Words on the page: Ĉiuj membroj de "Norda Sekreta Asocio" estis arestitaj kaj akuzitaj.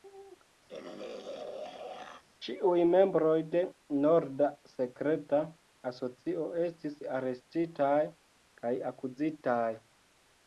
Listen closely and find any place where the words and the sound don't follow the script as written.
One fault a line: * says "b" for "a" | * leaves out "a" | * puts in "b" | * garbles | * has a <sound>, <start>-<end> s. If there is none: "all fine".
* has a throat clearing, 0.7-2.2 s